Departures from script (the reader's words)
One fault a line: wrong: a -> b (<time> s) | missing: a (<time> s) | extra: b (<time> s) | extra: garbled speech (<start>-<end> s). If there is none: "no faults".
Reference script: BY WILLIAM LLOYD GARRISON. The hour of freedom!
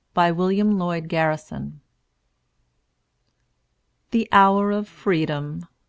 no faults